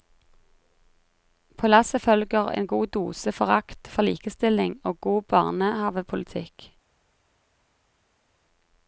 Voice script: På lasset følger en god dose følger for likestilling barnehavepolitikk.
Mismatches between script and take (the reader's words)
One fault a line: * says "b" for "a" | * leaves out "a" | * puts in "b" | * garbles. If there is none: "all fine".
* says "forakt" for "følger"
* puts in "og god"